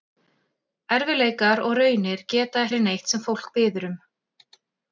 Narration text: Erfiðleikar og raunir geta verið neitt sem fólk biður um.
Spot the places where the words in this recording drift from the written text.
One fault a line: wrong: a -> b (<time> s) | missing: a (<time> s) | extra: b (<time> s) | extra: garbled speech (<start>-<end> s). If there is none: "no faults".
no faults